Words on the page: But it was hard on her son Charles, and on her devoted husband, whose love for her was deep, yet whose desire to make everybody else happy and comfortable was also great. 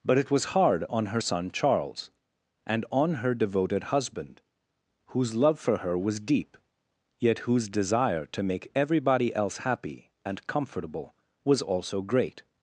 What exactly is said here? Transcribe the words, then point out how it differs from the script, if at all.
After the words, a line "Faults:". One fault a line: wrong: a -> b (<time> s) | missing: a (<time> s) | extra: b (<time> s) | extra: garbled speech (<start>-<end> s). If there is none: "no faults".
But it was hard on her son Charles, and on her devoted husband, whose love for her was deep, yet whose desire to make everybody else happy and comfortable was also great.
Faults:
no faults